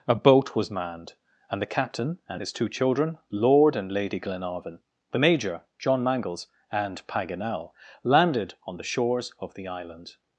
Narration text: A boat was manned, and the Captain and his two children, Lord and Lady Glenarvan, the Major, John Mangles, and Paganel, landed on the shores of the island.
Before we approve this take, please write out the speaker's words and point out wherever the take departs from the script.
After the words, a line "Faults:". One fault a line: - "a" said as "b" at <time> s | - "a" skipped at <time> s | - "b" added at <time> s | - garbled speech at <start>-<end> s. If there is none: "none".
A boat was manned, and the Captain and his two children, Lord and Lady Glenarvan, the Major, John Mangles, and Paganel, landed on the shores of the island.
Faults:
none